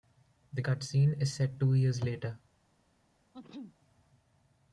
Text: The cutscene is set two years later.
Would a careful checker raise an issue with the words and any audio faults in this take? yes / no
yes